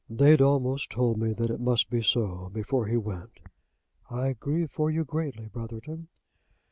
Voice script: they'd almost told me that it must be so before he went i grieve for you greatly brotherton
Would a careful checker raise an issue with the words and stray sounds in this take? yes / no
no